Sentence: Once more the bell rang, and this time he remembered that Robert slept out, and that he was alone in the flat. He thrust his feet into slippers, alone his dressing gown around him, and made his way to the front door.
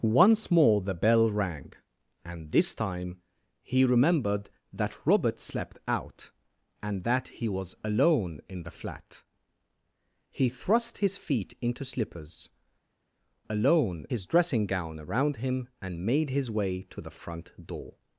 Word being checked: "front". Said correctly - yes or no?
yes